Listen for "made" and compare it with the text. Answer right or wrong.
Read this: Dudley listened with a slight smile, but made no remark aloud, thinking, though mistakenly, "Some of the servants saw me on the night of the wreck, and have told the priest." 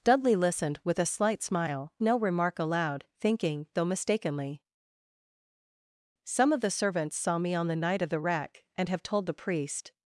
wrong